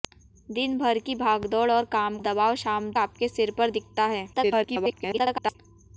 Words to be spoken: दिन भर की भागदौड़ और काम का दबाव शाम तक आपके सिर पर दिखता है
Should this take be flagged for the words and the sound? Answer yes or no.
yes